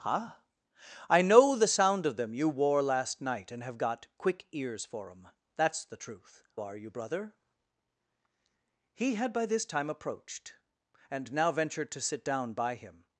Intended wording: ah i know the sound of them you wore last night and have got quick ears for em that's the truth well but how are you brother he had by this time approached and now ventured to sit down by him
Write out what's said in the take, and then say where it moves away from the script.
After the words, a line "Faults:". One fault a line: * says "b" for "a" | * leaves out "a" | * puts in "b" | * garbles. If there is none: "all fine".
ah i know the sound of them you wore last night and have got quick ears for em that's the truth are you brother he had by this time approached and now ventured to sit down by him
Faults:
* leaves out "well but how"